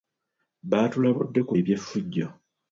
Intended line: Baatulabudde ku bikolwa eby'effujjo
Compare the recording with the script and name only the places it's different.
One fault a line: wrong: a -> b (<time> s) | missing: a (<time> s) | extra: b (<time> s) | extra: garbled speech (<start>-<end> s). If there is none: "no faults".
missing: bikolwa (1.5 s)